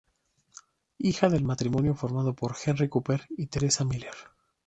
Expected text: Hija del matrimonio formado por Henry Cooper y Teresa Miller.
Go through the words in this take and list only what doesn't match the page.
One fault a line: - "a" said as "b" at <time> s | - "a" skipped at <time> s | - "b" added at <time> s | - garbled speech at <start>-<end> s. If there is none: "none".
none